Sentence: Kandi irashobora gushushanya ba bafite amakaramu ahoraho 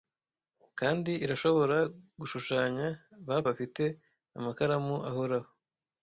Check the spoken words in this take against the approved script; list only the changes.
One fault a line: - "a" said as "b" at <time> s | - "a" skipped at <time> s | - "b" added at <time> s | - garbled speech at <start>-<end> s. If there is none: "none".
none